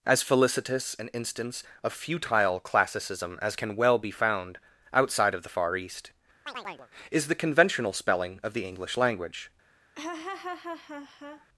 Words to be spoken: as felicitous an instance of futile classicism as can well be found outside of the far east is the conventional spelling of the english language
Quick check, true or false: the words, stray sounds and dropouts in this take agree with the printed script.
false